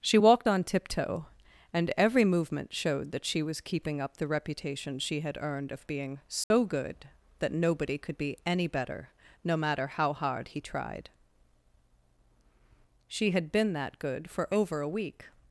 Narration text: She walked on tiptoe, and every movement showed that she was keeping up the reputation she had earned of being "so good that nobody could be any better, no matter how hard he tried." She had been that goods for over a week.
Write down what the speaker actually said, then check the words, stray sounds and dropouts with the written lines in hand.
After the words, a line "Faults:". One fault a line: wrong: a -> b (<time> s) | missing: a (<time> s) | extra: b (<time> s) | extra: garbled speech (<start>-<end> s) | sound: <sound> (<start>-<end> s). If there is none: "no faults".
She walked on tiptoe, and every movement showed that she was keeping up the reputation she had earned of being "so good that nobody could be any better, no matter how hard he tried." She had been that good for over a week.
Faults:
sound: dropout (6.4-6.5 s)
wrong: goods -> good (14.0 s)